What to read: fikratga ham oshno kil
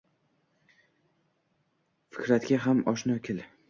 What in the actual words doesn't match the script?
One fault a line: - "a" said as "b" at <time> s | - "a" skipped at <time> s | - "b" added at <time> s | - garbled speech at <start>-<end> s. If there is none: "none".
none